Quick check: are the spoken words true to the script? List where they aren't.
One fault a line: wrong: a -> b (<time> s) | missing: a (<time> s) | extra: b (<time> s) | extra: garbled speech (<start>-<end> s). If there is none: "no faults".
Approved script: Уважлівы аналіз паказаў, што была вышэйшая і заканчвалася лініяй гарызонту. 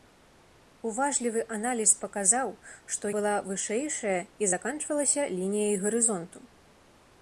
no faults